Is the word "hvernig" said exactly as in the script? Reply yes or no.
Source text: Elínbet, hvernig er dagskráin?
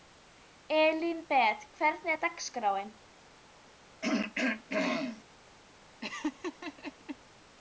yes